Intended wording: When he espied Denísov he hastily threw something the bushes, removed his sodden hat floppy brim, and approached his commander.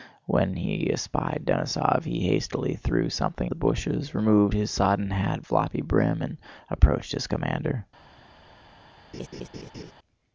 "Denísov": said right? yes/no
yes